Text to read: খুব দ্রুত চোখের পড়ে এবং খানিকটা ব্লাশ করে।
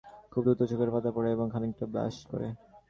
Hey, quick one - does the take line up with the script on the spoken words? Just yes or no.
no